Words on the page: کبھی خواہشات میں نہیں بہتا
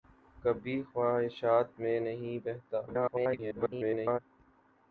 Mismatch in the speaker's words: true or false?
true